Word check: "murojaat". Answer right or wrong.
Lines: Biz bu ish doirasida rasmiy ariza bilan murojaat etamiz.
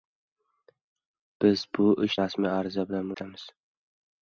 wrong